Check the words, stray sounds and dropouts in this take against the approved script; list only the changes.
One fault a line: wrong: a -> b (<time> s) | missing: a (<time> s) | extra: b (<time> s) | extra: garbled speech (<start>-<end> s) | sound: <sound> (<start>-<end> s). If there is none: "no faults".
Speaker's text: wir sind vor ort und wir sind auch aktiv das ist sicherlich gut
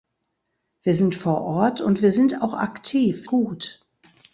missing: das ist sicherlich (3.3 s)